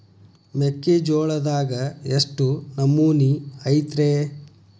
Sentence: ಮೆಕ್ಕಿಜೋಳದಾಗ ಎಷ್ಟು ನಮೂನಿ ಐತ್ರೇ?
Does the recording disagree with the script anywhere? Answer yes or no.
no